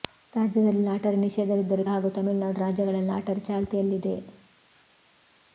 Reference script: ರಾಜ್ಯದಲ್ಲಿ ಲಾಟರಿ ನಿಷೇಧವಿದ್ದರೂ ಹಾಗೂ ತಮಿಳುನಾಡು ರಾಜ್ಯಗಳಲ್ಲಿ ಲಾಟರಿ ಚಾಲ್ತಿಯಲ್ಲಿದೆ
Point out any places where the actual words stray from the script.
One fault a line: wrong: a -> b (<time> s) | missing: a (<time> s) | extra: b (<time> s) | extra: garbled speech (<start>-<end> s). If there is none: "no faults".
no faults